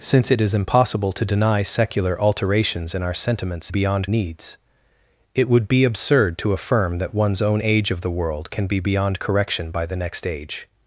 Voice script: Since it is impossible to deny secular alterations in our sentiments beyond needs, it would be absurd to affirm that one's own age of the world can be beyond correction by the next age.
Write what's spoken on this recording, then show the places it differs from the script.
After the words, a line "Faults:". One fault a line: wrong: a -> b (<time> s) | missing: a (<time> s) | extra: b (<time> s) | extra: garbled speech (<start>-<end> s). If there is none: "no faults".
Since it is impossible to deny secular alterations in our sentiments beyond needs, it would be absurd to affirm that one's own age of the world can be beyond correction by the next age.
Faults:
no faults